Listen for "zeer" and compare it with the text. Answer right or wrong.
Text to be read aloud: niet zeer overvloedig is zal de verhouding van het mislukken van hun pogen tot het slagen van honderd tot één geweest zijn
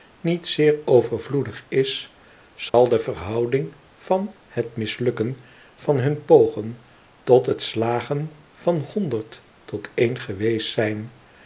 right